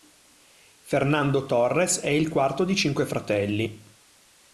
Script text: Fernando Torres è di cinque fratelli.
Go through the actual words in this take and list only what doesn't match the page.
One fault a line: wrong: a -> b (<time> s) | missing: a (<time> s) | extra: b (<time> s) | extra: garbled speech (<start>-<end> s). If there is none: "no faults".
extra: il quarto (2.1 s)